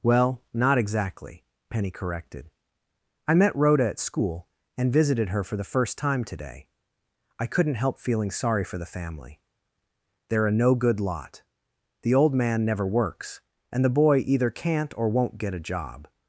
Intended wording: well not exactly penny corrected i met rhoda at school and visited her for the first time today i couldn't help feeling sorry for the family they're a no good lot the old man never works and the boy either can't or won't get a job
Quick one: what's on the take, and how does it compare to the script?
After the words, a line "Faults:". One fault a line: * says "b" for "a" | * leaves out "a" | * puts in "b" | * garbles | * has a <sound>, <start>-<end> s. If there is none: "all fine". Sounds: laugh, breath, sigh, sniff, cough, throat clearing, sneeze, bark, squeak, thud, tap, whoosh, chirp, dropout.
well not exactly penny corrected i met rhoda at school and visited her for the first time today i couldn't help feeling sorry for the family they're a no good lot the old man never works and the boy either can't or won't get a job
Faults:
all fine